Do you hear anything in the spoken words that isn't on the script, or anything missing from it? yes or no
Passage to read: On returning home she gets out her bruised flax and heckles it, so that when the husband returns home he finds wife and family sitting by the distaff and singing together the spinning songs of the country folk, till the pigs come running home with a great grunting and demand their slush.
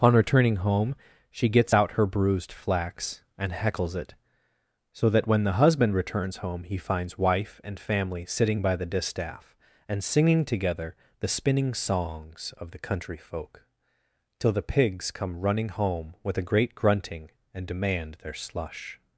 no